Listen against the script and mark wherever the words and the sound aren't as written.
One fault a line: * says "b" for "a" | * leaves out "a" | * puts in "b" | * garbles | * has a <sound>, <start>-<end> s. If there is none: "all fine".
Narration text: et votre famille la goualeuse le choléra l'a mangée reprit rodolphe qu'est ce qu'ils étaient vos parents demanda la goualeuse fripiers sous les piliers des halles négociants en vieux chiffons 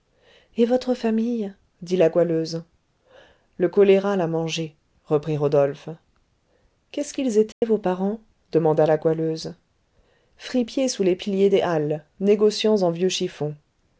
* puts in "dit"
* has a dropout, 7.5-7.6 s